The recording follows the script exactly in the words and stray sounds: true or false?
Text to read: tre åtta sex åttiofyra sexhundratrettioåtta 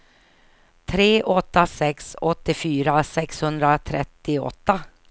true